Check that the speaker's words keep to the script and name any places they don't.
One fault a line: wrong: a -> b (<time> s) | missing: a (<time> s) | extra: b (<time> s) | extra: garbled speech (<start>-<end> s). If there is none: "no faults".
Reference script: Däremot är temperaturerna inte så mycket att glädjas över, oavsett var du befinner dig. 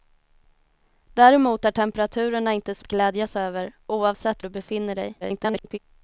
missing: mycket (2.9 s)
missing: var (4.4 s)
extra: garbled speech (5.2-5.8 s)